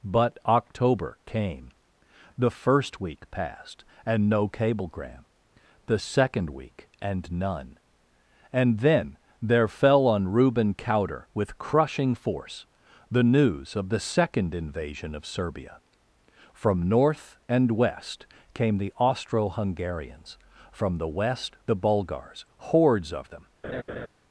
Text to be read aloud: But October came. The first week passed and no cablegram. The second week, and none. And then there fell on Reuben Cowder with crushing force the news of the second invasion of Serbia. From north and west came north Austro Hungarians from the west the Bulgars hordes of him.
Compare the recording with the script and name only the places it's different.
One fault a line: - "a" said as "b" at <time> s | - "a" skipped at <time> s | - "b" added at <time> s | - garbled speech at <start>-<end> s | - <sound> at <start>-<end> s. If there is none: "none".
- "north" said as "the" at 18.8 s
- "him" said as "them" at 23.3 s
- laugh at 23.6-24.1 s